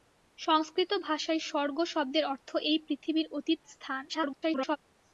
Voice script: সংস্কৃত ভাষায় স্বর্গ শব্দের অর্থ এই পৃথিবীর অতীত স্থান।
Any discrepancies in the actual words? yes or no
yes